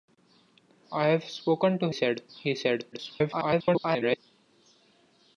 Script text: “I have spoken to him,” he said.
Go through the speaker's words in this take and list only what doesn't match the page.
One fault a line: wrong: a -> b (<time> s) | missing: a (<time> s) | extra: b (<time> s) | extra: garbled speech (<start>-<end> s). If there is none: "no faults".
wrong: him -> said (1.9 s)
extra: garbled speech (2.9-4.2 s)